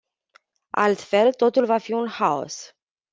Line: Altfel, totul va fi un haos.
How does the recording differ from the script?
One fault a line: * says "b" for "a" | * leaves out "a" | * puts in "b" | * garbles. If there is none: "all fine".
all fine